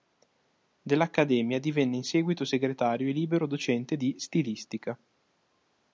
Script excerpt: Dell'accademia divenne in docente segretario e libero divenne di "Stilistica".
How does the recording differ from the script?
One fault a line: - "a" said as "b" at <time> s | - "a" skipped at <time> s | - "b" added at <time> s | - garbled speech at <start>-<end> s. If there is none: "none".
- "docente" said as "seguito" at 2.0 s
- "divenne" said as "docente" at 3.5 s